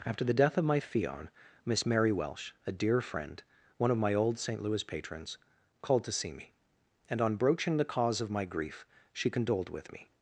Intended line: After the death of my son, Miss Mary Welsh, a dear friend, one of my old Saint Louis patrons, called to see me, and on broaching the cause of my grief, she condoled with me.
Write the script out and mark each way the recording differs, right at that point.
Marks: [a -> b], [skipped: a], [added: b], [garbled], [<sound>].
After the death of my [son, -> fion] Miss Mary Welsh, a dear friend, one of my old Saint Louis patrons, called to see me, and on broaching the cause of my grief, she condoled with me.